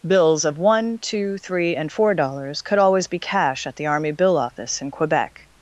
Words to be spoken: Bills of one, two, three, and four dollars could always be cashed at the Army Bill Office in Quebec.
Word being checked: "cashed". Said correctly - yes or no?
no